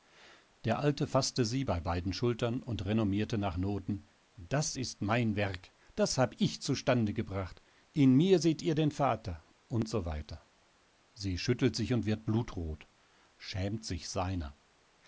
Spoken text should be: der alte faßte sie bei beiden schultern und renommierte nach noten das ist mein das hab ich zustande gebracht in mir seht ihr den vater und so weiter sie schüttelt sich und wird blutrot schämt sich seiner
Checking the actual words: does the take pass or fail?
fail